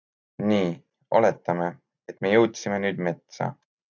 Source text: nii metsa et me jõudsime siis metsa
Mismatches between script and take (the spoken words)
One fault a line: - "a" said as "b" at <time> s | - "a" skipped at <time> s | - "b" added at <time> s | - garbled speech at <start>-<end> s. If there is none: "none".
- "metsa" said as "oletame" at 1.2 s
- "siis" said as "nüüd" at 2.9 s